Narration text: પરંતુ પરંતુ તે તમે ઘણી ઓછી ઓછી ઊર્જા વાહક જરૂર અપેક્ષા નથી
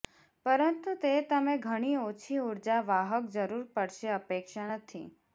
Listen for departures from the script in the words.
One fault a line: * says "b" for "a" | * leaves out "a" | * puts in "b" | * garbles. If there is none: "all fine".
* leaves out "પરંતુ"
* leaves out "ઓછી"
* puts in "પડશે"